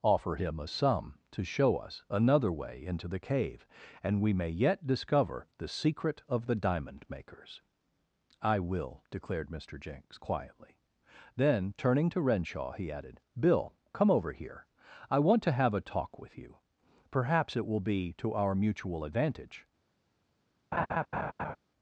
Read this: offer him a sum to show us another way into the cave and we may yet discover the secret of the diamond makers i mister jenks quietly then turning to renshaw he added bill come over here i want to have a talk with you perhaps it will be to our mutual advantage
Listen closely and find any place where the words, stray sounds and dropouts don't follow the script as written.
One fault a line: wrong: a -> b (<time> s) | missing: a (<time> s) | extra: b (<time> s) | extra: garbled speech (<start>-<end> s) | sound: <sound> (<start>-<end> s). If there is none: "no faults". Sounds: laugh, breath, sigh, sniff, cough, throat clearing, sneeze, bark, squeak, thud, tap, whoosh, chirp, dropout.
extra: will declared (8.6 s)
sound: laugh (20.7-21.6 s)